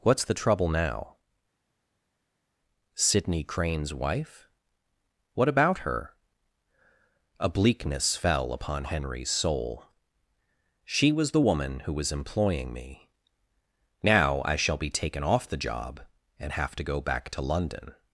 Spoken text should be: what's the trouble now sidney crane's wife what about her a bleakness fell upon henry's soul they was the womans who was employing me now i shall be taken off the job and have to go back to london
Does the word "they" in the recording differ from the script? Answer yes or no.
yes